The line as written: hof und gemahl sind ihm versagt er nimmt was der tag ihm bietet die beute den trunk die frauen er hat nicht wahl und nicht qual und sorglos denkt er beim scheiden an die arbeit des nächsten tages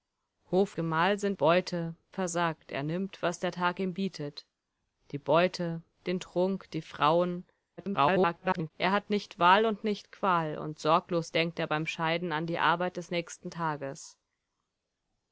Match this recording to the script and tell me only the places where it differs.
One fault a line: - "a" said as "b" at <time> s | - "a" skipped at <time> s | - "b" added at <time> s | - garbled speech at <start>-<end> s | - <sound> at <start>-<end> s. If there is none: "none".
- "und" skipped at 0.8 s
- "ihm" said as "beute" at 1.3 s
- garbled speech at 7.8-8.7 s